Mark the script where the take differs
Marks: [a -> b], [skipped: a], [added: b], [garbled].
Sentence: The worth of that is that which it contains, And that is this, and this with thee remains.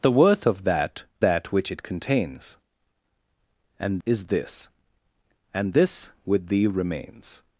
The worth of that [skipped: is] that which it contains, And [skipped: that] is this, and this with thee remains.